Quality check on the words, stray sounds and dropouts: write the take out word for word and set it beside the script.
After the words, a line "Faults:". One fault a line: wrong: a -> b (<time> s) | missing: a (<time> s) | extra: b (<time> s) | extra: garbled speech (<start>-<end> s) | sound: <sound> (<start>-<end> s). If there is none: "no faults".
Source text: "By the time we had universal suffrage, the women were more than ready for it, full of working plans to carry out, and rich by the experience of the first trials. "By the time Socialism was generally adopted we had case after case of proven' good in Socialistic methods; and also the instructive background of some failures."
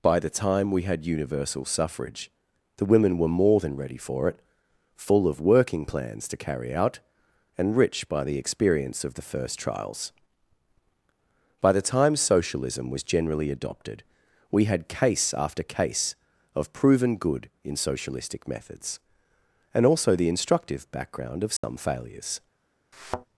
"By the time we had universal suffrage, the women were more than ready for it, full of working plans to carry out, and rich by the experience of the first trials. "By the time Socialism was generally adopted we had case after case of proven' good in Socialistic methods; and also the instructive background of some failures."
Faults:
sound: dropout (21.6-21.6 s)
sound: thud (22.9-23.3 s)